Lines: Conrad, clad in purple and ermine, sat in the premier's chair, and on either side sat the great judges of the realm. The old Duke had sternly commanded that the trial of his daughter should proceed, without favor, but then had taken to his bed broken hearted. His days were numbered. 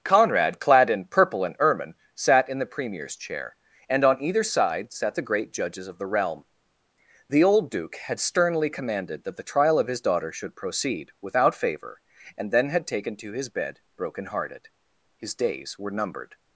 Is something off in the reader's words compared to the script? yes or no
yes